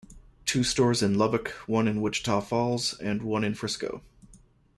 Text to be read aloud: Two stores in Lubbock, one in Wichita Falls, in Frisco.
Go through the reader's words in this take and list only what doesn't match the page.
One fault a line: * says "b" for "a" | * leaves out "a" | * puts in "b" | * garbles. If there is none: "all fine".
* puts in "and one"